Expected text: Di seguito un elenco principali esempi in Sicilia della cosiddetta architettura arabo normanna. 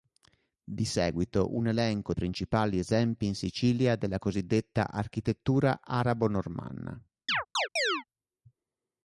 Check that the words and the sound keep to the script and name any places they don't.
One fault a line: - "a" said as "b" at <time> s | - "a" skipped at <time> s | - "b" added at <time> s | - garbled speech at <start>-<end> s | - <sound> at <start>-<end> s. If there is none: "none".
- chirp at 7.3-8.0 s